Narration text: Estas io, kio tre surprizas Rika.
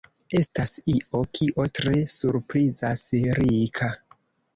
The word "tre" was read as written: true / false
true